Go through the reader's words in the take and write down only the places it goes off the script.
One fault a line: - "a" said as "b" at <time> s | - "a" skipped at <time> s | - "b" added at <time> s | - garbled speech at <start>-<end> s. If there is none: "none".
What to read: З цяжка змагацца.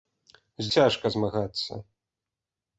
none